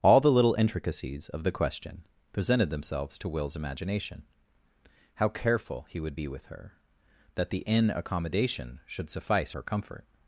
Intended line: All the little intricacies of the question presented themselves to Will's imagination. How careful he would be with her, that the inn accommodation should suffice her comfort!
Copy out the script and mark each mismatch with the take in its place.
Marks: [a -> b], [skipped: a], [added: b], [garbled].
All the little intricacies of the question presented themselves to Will's imagination. How careful he would be with her, that the inn accommodation should suffice her comfort!